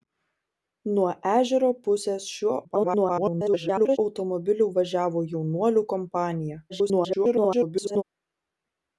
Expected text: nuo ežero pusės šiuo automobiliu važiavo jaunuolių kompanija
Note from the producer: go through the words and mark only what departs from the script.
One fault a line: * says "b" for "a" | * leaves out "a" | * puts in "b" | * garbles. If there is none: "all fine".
* garbles
* garbles